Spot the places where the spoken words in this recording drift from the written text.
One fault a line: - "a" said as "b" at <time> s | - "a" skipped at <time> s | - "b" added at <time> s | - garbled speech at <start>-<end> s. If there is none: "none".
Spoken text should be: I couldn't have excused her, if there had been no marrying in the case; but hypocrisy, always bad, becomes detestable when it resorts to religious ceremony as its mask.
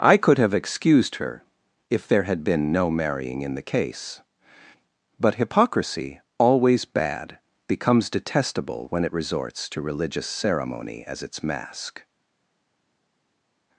- "couldn't" said as "could" at 0.2 s